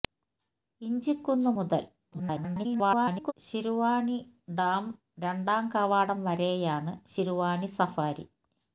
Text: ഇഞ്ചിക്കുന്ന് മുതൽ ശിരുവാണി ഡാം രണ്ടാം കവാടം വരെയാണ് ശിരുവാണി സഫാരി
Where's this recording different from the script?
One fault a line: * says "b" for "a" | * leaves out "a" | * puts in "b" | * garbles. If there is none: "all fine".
* garbles